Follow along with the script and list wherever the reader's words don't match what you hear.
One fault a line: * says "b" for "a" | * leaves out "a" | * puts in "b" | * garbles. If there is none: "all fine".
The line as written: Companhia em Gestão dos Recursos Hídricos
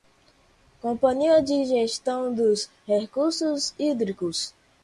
* says "de" for "em"